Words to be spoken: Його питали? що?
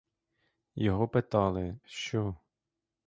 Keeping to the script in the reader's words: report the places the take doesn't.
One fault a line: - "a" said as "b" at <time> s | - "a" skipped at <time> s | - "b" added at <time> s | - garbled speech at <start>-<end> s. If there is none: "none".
none